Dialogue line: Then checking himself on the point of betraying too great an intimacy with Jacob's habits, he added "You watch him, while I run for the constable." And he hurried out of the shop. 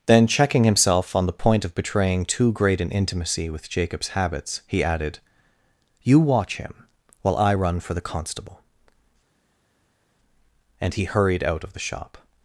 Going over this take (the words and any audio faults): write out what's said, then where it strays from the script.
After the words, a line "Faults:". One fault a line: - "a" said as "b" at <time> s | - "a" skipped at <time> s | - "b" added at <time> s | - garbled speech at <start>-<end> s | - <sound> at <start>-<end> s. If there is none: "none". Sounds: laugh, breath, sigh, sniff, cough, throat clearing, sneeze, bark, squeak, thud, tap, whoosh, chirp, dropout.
Then checking himself on the point of betraying too great an intimacy with Jacob's habits, he added "You watch him, while I run for the constable." And he hurried out of the shop.
Faults:
none